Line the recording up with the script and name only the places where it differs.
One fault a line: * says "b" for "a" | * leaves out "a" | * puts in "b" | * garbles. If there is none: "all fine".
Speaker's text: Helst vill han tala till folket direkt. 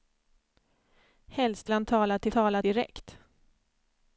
* leaves out "vill"
* says "tala" for "folket"